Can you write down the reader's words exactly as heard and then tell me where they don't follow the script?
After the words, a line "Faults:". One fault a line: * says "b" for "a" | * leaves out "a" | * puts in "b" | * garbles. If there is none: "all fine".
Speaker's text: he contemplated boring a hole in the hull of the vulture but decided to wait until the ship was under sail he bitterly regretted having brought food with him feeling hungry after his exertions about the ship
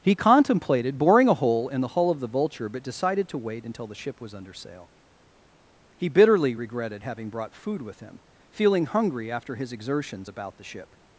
he contemplated boring a hole in the hull of the vulture but decided to wait until the ship was under sail he bitterly regretted having brought food with him feeling hungry after his exertions about the ship
Faults:
all fine